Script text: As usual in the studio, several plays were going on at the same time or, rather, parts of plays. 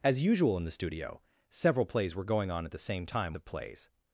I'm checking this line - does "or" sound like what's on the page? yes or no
no